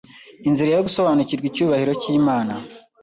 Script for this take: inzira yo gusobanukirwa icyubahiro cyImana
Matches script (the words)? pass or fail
pass